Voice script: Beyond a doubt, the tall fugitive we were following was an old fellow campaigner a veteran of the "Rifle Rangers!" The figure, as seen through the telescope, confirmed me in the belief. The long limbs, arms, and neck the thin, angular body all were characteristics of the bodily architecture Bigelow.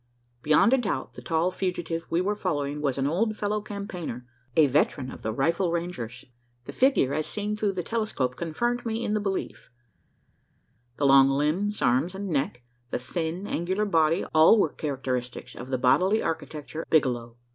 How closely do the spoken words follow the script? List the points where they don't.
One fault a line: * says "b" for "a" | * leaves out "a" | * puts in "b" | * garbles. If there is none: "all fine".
all fine